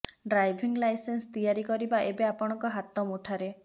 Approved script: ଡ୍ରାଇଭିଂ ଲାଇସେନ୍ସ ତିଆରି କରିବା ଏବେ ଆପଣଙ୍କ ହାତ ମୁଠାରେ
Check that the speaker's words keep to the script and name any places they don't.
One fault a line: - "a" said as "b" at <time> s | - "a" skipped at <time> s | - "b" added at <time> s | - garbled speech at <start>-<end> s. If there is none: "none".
none